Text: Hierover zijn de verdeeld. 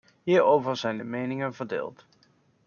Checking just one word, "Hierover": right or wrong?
right